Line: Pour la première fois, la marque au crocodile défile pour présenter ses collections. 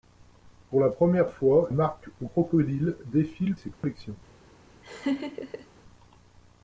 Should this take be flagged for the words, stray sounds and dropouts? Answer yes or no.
yes